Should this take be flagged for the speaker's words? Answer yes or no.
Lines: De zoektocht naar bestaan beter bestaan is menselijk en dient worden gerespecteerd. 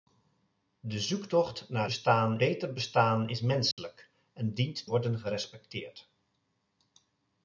no